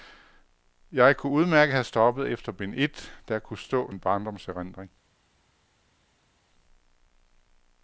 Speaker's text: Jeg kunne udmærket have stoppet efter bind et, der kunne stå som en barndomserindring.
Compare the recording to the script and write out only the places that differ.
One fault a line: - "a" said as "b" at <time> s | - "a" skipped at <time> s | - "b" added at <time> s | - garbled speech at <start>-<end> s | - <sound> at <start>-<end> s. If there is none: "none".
- "som" skipped at 3.9 s